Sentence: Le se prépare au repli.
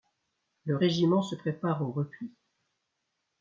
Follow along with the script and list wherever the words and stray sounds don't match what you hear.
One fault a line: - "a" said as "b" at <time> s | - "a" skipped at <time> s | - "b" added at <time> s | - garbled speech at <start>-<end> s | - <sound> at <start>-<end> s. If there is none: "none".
- "régiment" added at 0.7 s